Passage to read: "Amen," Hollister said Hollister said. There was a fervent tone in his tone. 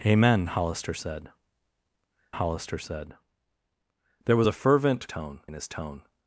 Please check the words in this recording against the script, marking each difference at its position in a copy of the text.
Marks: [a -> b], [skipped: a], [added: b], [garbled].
"Amen," Hollister said Hollister said. There was a fervent tone in his tone.